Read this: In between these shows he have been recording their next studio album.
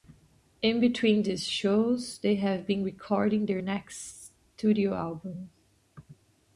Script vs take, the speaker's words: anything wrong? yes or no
yes